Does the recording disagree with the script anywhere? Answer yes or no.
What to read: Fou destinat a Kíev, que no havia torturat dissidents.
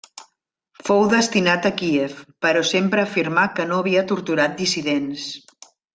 yes